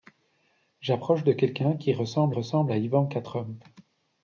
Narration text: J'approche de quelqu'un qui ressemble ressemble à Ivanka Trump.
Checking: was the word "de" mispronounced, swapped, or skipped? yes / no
no